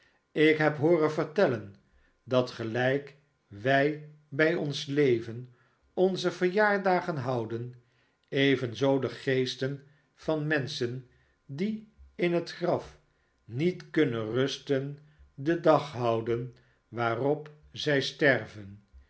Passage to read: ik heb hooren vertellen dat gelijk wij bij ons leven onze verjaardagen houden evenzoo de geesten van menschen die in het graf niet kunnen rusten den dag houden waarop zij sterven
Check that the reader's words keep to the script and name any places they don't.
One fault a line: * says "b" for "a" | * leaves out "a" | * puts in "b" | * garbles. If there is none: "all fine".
all fine